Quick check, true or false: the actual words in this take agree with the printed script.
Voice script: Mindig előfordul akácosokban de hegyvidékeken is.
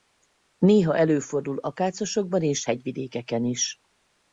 false